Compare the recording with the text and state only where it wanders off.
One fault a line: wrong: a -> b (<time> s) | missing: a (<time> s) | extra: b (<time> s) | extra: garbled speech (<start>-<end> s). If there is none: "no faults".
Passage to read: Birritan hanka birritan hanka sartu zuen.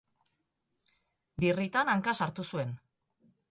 missing: birritan hanka (2.2 s)